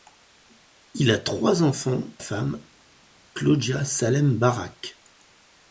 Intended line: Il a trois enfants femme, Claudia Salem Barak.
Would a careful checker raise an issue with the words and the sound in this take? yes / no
no